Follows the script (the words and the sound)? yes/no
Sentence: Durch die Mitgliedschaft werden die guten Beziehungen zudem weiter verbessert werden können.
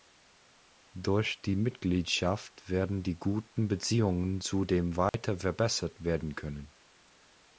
no